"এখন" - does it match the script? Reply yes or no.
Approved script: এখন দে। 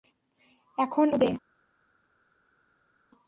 yes